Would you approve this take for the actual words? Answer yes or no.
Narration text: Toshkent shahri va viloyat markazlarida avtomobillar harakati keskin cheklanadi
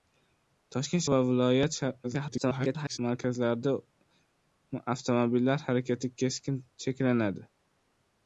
no